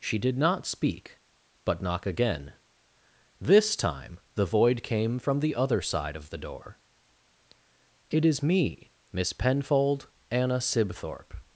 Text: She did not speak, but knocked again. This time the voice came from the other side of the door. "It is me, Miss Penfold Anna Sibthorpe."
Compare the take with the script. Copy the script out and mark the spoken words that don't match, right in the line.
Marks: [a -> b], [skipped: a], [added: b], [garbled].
She did not speak, but [knocked -> knock] again. This time the [voice -> void] came from the other side of the door. "It is me, Miss Penfold Anna Sibthorpe."